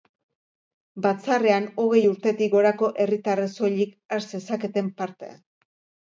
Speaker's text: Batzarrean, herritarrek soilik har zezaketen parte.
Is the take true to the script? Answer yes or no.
no